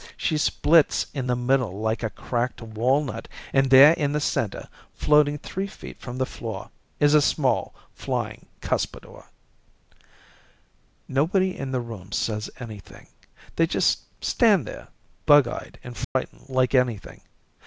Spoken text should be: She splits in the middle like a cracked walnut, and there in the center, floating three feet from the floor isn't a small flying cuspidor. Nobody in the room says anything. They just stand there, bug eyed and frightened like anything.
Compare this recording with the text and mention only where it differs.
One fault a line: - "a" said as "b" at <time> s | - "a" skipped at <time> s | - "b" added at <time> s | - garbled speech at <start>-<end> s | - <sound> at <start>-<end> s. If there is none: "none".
- "isn't" said as "is" at 7.0 s
- dropout at 16.0-16.2 s